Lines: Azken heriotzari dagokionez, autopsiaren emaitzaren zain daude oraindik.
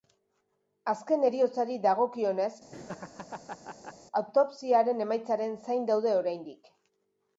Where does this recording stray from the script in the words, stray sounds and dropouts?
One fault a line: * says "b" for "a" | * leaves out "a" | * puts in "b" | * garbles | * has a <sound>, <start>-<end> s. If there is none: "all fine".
* has a laugh, 2.7-3.9 s